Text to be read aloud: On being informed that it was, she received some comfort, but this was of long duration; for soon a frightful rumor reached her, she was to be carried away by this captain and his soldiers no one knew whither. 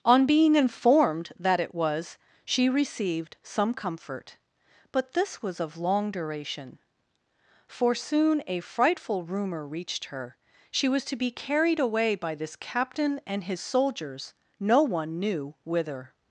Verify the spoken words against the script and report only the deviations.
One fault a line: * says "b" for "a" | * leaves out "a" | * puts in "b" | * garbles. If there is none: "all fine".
all fine